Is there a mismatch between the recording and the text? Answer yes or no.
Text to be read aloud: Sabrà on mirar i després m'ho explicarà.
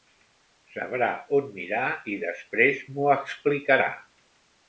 no